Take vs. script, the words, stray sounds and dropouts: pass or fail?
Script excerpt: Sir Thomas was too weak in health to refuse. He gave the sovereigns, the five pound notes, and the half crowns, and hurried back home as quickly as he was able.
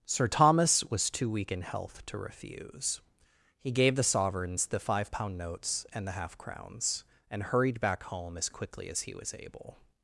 pass